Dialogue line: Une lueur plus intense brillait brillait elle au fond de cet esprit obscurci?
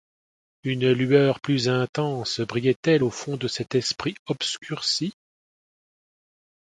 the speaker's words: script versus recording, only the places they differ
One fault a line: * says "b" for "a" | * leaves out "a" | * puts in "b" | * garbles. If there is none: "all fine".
* leaves out "brillait"